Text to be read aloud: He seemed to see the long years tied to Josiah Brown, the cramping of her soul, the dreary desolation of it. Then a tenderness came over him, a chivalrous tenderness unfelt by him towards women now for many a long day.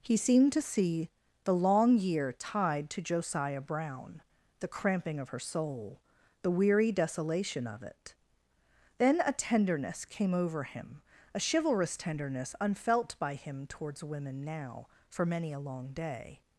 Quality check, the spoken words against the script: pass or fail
fail